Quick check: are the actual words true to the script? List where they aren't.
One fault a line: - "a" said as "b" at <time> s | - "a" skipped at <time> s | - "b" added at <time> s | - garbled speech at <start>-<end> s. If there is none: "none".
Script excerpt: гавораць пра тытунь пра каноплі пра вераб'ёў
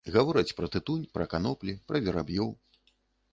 none